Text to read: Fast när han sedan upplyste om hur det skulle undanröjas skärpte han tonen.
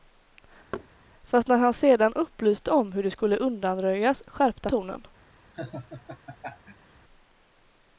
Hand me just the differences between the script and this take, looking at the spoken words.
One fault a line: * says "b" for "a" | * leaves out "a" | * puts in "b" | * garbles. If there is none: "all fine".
* leaves out "han"